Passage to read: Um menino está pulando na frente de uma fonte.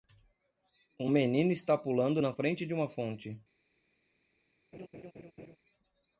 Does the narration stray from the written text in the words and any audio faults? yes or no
yes